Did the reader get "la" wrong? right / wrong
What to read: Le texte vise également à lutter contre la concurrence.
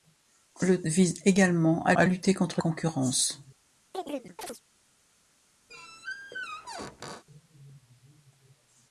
wrong